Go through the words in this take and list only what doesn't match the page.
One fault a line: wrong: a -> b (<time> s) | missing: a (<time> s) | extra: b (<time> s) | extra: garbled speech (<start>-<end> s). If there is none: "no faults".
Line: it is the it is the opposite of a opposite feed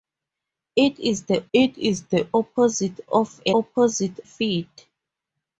no faults